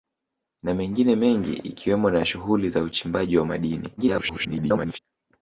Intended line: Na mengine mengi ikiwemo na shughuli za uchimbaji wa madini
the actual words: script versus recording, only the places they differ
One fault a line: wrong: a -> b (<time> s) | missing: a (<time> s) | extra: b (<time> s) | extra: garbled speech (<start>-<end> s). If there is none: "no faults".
extra: garbled speech (4.0-5.0 s)